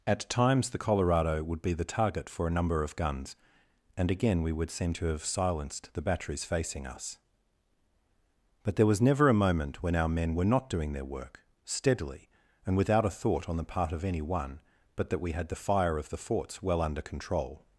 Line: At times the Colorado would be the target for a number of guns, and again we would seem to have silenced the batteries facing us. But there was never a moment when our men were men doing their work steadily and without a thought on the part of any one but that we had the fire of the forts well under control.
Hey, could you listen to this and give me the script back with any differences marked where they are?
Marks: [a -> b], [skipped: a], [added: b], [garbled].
At times the Colorado would be the target for a number of guns, and again we would seem to have silenced the batteries facing us. But there was never a moment when our men were [men -> not] doing their work steadily and without a thought on the part of any one but that we had the fire of the forts well under control.